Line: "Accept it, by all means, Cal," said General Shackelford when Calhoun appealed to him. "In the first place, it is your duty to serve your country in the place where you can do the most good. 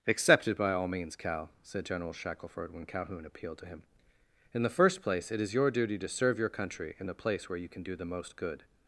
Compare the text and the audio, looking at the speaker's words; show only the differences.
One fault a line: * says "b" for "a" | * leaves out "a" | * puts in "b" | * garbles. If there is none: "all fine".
all fine